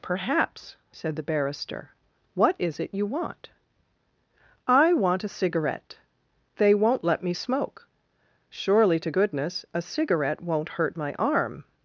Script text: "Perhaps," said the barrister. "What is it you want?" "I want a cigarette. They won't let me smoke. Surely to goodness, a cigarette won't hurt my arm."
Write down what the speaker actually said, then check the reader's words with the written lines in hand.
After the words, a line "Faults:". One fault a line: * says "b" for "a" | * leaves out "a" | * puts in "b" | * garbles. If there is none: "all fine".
"Perhaps," said the barrister. "What is it you want?" "I want a cigarette. They won't let me smoke. Surely to goodness, a cigarette won't hurt my arm."
Faults:
all fine